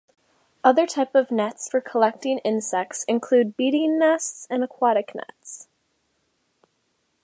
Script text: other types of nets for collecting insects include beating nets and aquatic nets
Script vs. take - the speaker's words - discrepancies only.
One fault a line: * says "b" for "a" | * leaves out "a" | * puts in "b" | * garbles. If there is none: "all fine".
all fine